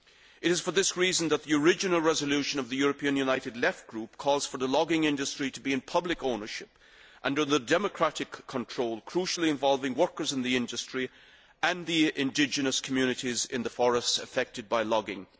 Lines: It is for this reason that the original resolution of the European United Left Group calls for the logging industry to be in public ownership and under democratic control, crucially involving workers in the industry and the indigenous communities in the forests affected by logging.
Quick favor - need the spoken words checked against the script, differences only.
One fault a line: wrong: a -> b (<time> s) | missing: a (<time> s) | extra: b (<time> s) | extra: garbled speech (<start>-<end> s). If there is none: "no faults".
no faults